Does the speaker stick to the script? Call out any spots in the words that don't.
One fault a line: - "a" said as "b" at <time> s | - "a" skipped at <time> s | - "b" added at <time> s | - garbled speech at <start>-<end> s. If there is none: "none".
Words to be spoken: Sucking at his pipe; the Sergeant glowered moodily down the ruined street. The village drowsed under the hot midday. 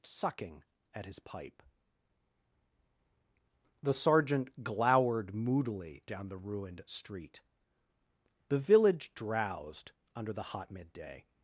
none